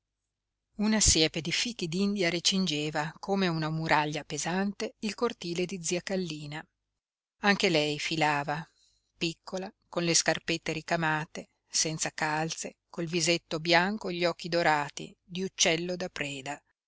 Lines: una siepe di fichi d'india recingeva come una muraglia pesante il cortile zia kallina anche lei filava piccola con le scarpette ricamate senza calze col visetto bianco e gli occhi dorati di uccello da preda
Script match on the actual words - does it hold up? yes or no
no